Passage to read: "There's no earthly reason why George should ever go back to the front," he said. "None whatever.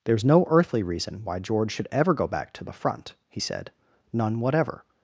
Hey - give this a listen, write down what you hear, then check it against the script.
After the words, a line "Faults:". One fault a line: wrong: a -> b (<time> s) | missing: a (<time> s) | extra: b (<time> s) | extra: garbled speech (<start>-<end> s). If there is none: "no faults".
"There's no earthly reason why George should ever go back to the front," he said. "None whatever.
Faults:
no faults